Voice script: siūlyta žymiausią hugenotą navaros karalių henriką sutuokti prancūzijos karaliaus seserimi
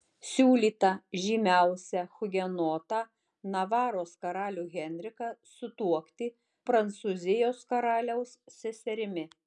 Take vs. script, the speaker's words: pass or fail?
pass